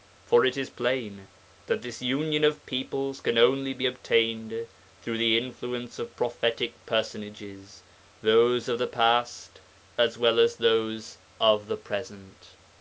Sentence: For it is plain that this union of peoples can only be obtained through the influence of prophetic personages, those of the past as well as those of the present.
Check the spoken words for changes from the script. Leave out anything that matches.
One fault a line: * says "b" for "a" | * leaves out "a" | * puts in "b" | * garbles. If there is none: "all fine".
all fine